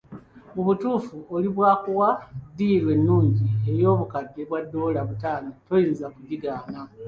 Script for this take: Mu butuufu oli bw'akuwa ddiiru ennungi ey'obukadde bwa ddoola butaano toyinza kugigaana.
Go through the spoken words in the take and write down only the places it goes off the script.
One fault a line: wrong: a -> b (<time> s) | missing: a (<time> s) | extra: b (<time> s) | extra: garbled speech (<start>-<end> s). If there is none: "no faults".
no faults